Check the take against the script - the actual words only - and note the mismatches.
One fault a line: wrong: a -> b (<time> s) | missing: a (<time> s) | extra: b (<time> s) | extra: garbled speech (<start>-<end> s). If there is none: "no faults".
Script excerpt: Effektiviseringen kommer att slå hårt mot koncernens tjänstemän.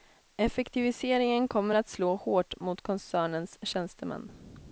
no faults